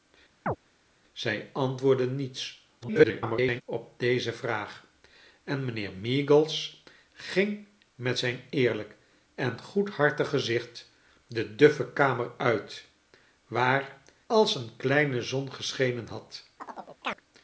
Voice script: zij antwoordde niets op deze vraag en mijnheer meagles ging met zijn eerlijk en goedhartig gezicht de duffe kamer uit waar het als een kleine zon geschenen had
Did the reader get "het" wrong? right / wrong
wrong